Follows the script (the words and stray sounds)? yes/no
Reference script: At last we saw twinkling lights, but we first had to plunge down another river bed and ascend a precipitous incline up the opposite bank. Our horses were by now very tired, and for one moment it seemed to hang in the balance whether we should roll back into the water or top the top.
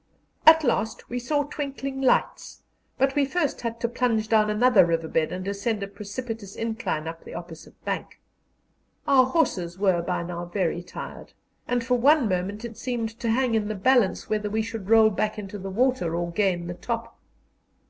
no